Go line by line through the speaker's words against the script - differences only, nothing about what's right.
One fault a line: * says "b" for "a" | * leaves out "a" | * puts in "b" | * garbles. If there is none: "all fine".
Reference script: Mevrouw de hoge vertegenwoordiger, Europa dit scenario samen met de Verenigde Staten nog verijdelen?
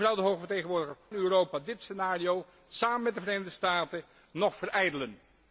all fine